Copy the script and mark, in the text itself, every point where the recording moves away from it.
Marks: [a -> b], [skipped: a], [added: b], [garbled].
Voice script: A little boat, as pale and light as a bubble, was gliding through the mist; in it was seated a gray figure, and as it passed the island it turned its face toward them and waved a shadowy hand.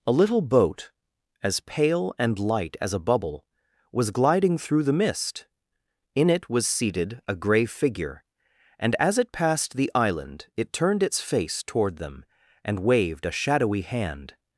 A little boat, as pale and light as a bubble, was gliding through the mist; in it was seated a gray figure, and as it passed the island it turned its face toward them and waved a shadowy hand.